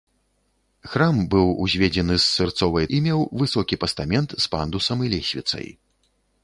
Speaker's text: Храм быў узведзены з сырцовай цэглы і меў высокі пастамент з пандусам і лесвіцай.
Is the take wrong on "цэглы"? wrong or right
wrong